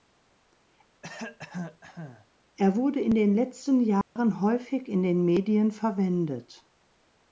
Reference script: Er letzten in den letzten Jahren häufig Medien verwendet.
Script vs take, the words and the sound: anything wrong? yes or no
yes